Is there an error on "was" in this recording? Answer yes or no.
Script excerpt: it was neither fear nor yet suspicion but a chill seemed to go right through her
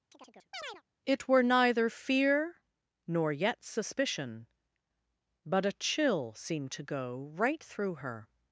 yes